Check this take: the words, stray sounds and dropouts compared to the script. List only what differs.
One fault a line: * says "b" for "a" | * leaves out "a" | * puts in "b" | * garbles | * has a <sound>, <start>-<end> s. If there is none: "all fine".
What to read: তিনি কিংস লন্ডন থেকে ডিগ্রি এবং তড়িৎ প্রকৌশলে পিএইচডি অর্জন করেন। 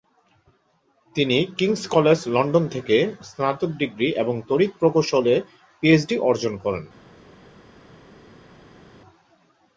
* puts in "কলেজ"
* puts in "স্নাতক"